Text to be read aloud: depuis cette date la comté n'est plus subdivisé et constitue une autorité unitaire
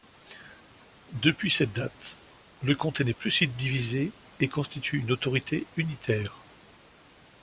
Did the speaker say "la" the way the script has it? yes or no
no